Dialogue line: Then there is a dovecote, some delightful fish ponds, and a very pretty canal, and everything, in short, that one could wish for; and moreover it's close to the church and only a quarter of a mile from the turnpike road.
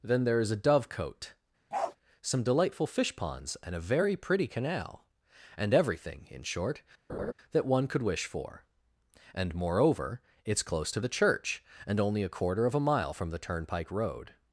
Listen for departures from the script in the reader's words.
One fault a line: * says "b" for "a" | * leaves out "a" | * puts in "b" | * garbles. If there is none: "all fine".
all fine